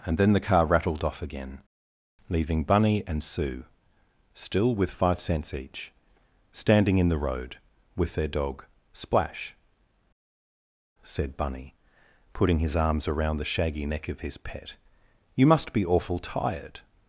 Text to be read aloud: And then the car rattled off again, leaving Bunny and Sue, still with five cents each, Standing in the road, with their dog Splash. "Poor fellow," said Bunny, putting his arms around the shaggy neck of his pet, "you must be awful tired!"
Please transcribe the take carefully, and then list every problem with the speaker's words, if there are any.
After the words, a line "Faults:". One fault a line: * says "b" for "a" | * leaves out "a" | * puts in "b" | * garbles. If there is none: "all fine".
And then the car rattled off again, leaving Bunny and Sue, still with five cents each, Standing in the road, with their dog Splash," "Said Bunny, putting his arms around the shaggy neck of his pet, "you must be awful tired!"
Faults:
* leaves out "Poor fellow"